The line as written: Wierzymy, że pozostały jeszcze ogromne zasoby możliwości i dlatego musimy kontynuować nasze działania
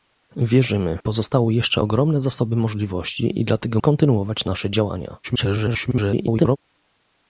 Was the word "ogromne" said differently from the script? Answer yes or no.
no